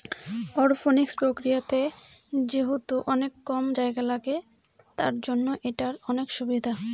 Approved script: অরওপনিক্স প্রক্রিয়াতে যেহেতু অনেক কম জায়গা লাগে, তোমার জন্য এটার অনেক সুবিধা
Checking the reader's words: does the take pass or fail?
fail